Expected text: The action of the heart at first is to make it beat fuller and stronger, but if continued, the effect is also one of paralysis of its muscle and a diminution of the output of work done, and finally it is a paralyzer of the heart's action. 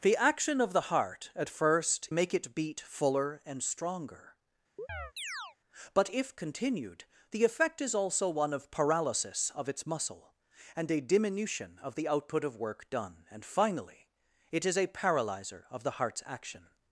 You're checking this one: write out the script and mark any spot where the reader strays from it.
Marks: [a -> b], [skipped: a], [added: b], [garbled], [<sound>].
The action of the heart at first [skipped: is to] make it beat fuller and stronger, [chirp] but if continued, the effect is also one of paralysis of its muscle and a diminution of the output of work done, and finally it is a paralyzer of the heart's action.